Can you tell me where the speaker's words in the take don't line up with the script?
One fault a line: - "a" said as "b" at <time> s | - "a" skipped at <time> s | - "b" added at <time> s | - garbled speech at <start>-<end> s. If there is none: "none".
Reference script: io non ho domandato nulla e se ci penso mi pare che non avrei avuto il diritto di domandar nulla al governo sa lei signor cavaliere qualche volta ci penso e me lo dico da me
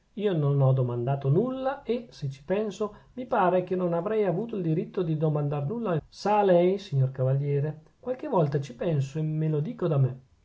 - "governo" skipped at 6.0 s